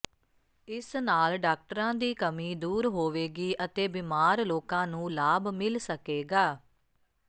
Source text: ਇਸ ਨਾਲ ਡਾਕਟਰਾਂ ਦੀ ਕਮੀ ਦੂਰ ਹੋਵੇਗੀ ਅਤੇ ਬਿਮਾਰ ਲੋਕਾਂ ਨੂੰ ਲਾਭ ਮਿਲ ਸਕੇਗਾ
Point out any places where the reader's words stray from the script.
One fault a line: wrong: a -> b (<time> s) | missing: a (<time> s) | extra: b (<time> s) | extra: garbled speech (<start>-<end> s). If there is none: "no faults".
no faults